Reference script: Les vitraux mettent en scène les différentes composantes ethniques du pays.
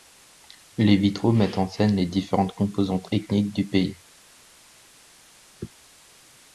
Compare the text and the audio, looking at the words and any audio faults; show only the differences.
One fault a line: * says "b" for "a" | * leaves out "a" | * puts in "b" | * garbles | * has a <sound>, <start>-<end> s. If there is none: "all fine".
all fine